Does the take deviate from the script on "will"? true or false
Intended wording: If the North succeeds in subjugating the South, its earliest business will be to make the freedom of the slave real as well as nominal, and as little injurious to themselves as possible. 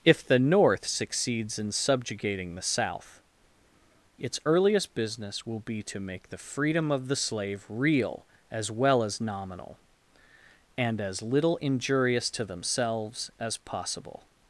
false